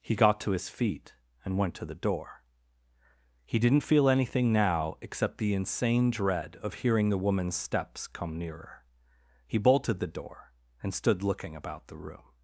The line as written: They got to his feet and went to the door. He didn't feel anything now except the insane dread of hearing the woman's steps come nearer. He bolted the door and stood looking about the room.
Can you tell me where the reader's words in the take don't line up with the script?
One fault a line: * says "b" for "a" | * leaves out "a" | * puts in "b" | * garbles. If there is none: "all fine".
* says "He" for "They"